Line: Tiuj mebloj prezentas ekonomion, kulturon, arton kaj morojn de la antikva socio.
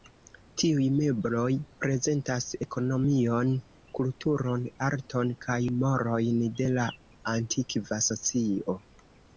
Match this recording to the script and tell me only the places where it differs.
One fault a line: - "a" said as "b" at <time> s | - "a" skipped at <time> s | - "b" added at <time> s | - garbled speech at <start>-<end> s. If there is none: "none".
none